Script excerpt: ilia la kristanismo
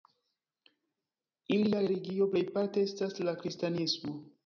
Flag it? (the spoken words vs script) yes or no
yes